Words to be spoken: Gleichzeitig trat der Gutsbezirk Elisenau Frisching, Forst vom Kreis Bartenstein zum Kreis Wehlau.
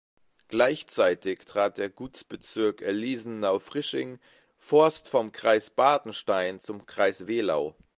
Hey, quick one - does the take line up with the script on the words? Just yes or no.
yes